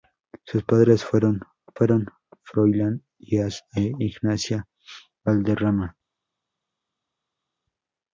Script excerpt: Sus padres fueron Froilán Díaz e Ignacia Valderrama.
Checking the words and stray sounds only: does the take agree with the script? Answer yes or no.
no